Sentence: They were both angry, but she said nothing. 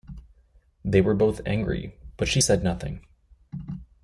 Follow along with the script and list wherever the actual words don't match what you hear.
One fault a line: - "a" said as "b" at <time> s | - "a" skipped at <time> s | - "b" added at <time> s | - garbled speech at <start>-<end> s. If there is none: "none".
none